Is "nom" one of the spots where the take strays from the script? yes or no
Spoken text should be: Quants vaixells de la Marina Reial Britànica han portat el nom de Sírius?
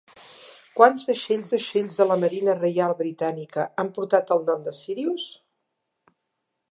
no